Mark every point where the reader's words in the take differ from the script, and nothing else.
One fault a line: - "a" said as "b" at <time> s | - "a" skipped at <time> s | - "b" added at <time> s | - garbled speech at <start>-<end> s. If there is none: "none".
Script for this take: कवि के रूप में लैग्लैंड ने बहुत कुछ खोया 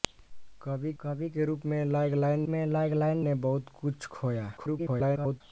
- "कवि" added at 1.0 s
- "में लैग्लैंड" added at 2.5 s
- garbled speech at 4.6-5.4 s